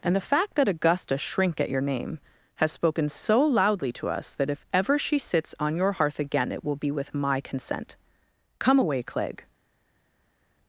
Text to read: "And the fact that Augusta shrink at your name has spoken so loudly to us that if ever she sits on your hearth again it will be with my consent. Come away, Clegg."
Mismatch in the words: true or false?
false